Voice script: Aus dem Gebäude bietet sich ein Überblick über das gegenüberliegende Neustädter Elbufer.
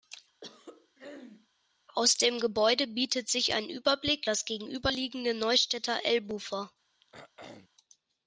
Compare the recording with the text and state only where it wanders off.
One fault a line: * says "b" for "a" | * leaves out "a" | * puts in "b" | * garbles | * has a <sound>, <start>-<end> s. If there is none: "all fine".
* has a throat clearing, 0.4-1.5 s
* leaves out "über"
* has a throat clearing, 7.0-7.7 s